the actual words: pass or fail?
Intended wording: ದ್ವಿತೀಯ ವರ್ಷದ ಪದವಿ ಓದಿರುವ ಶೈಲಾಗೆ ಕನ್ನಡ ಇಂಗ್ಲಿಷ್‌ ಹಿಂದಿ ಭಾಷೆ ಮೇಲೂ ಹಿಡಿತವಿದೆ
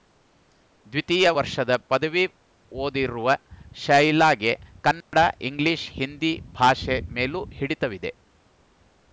pass